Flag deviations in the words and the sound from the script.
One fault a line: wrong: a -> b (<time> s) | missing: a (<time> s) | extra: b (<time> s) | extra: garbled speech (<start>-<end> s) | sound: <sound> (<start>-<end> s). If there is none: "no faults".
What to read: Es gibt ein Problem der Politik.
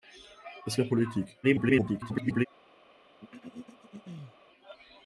missing: gibt ein Problem (0.8 s)
extra: garbled speech (1.4-2.5 s)
sound: throat clearing (3.2-4.4 s)